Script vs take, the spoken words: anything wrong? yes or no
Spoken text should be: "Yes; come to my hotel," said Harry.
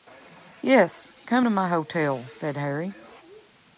no